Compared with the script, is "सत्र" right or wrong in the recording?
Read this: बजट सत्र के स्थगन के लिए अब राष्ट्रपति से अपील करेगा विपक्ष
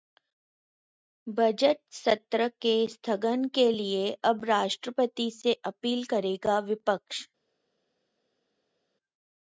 right